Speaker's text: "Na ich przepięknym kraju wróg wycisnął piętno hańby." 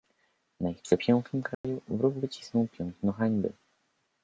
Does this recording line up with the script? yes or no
yes